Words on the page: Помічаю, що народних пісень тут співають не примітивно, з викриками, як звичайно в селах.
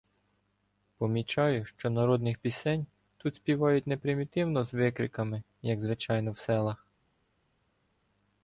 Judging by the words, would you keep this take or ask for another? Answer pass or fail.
pass